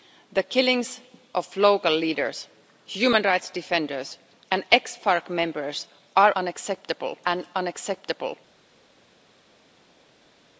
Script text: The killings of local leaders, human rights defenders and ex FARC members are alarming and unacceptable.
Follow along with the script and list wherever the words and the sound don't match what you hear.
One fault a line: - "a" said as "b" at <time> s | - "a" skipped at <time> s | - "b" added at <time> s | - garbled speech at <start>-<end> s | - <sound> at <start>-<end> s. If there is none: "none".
- "alarming" said as "unacceptable" at 6.4 s